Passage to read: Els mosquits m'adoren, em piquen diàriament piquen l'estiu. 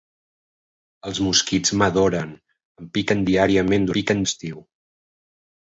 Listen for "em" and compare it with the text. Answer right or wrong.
right